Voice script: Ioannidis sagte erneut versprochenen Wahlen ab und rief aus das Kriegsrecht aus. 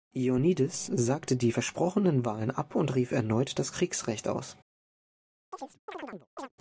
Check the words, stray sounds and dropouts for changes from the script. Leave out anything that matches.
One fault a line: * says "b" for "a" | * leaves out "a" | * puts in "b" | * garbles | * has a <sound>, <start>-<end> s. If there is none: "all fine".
* says "die" for "erneut"
* says "erneut" for "aus"
* has a chirp, 5.5-6.5 s